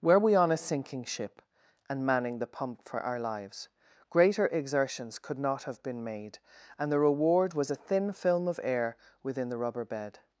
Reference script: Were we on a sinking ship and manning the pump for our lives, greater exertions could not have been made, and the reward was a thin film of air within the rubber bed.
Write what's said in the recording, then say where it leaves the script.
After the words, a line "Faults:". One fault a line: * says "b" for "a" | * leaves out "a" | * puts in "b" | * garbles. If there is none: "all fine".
Were we on a sinking ship and manning the pump for our lives, greater exertions could not have been made, and the reward was a thin film of air within the rubber bed.
Faults:
all fine